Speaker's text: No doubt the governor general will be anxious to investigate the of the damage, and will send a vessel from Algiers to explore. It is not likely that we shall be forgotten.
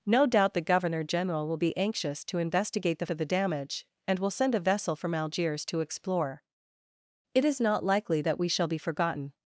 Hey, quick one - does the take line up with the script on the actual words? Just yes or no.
yes